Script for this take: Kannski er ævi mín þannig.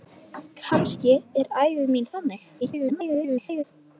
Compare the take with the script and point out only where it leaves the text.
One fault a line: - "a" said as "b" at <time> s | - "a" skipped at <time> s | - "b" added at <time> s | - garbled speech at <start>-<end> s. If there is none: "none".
- garbled speech at 2.6-3.6 s